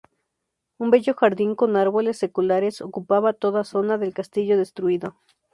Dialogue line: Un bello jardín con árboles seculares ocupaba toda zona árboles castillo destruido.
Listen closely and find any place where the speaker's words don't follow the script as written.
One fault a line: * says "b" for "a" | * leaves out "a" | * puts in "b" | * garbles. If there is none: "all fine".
* says "del" for "árboles"